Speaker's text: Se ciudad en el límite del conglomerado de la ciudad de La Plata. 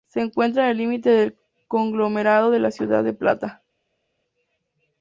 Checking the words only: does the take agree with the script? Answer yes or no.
no